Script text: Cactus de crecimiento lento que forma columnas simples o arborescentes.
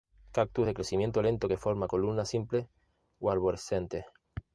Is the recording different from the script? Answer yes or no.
no